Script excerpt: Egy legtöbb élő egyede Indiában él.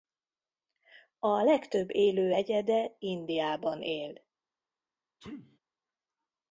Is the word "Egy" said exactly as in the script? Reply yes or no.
no